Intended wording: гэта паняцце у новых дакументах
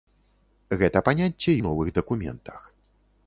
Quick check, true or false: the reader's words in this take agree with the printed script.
true